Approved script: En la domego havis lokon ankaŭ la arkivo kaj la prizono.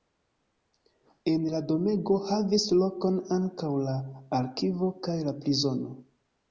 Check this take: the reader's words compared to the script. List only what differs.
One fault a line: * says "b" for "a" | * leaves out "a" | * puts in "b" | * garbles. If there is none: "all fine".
all fine